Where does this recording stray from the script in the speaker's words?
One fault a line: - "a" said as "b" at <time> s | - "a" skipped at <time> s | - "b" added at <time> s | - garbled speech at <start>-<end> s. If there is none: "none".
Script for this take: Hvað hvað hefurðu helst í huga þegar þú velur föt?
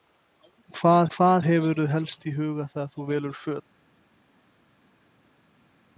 none